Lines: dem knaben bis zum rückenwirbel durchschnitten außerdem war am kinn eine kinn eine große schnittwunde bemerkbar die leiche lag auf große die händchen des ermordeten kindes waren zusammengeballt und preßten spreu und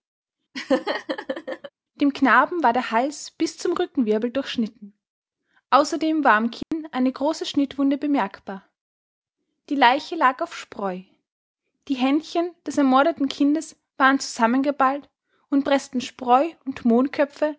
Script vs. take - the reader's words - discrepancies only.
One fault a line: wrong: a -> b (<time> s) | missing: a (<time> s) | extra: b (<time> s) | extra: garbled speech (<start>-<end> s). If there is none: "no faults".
extra: war der hals (2.6 s)
missing: kinn eine (7.1 s)
wrong: große -> spreu (10.6 s)